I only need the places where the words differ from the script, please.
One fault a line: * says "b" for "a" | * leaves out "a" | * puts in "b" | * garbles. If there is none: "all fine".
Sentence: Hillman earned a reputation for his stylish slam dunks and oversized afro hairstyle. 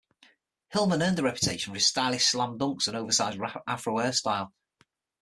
all fine